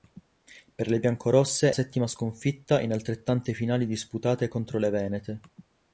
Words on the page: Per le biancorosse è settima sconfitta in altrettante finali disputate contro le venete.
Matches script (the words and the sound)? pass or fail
pass